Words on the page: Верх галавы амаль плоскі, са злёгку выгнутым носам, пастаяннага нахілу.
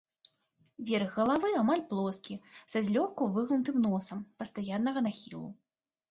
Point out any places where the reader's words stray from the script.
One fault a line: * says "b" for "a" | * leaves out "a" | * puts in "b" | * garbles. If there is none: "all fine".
all fine